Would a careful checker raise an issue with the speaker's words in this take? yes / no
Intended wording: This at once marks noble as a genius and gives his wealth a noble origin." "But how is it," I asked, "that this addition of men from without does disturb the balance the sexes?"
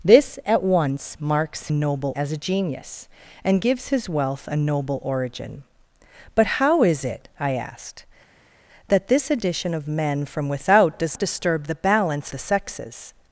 no